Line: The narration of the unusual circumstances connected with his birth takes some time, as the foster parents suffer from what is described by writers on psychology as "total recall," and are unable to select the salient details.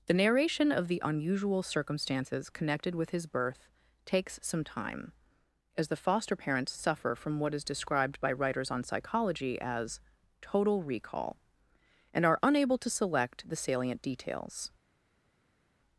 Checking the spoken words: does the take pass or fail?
pass